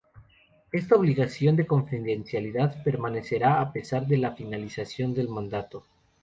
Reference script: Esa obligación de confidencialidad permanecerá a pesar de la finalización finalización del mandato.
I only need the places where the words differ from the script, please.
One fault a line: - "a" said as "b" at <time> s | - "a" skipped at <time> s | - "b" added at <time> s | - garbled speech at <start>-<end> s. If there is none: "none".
- "Esa" said as "Esta" at 0.7 s
- "finalización" skipped at 5.1 s